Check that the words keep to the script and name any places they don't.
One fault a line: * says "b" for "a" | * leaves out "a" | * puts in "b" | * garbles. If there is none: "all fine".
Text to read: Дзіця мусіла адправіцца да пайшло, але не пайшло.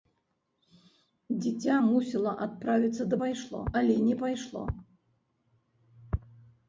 all fine